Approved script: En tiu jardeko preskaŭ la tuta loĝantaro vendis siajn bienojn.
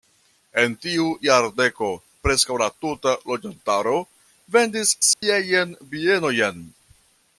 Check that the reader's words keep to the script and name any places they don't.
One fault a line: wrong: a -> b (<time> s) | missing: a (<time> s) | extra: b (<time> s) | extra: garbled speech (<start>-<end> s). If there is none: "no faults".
no faults